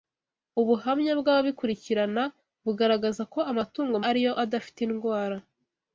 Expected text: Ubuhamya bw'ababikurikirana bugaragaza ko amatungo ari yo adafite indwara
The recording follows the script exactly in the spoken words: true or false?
true